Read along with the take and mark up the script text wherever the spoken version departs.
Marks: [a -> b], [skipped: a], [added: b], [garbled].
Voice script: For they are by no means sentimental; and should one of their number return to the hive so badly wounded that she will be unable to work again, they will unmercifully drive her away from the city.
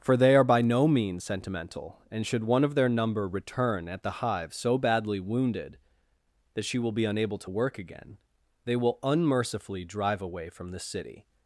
For they are by no means sentimental; and should one of their number return [to -> at] the hive so badly wounded that she will be unable to work again, they will unmercifully drive [skipped: her] away from the city.